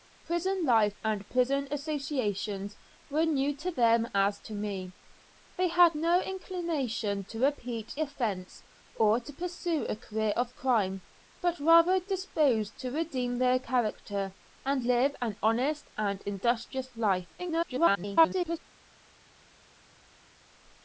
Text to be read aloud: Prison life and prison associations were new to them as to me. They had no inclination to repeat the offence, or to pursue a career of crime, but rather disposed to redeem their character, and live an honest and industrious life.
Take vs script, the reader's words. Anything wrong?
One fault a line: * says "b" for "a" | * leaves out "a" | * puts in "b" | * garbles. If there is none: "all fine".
* leaves out "the"
* garbles